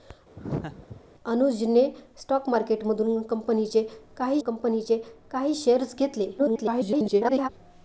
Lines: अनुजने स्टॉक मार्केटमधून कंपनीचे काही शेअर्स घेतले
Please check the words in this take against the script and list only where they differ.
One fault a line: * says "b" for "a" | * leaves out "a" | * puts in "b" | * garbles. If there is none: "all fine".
* puts in "कंपनीचे काही"
* garbles